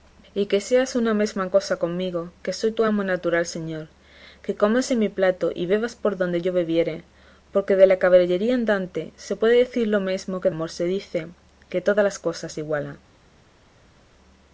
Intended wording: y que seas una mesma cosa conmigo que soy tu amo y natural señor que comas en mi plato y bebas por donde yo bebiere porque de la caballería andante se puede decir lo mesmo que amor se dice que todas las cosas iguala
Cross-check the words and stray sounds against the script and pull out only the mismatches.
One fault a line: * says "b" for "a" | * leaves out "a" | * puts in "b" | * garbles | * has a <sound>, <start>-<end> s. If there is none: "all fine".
all fine